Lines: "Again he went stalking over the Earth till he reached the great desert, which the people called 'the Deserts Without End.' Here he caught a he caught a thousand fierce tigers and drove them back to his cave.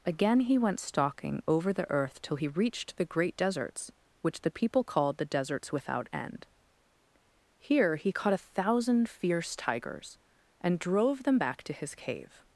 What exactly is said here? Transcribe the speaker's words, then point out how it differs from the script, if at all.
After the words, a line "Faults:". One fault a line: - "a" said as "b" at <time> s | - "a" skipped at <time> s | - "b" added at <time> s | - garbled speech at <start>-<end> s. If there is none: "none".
"Again he went stalking over the Earth till he reached the great deserts, which the people called 'the Deserts Without End.' Here he caught a thousand fierce tigers and drove them back to his cave.
Faults:
- "desert" said as "deserts" at 3.4 s
- "he caught a" skipped at 8.5 s